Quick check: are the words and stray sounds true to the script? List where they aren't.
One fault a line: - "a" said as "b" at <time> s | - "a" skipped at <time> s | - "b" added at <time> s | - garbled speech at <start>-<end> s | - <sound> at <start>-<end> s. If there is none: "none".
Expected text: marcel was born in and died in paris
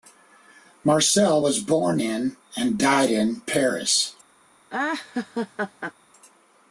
- laugh at 4.7-5.9 s